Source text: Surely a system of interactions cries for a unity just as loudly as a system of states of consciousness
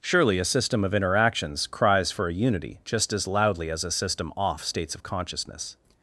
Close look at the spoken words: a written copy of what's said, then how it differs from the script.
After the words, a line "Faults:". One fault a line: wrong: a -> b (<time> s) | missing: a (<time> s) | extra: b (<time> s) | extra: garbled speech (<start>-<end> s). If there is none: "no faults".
Surely a system of interactions cries for a unity just as loudly as a system off states of consciousness
Faults:
wrong: of -> off (4.4 s)